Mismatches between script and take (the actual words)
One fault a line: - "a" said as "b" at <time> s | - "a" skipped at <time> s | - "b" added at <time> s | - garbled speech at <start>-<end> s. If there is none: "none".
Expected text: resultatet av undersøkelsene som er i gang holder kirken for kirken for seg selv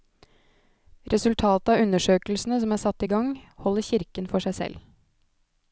- "satt" added at 2.9 s
- "kirken for" skipped at 4.5 s